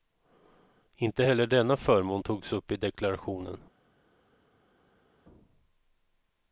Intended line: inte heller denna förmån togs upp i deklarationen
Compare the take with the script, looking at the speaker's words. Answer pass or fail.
pass